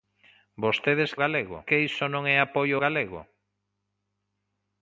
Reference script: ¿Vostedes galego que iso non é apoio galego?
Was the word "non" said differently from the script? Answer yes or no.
no